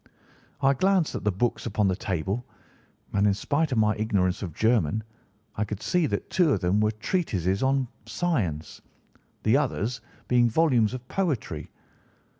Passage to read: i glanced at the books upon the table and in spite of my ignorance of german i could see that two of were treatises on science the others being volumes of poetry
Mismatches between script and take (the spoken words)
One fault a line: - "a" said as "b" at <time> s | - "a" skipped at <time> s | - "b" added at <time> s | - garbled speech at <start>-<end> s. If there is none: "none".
- "them" added at 6.6 s